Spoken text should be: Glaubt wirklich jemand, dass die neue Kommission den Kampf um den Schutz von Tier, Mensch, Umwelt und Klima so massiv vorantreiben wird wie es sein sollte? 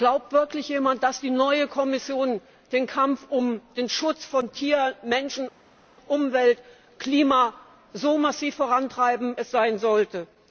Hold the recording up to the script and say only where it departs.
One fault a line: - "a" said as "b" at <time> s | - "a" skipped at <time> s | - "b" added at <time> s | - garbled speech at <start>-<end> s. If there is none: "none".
- "wird wie" skipped at 9.4 s